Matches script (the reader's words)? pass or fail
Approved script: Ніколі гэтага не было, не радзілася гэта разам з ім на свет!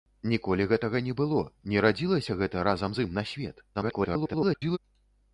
fail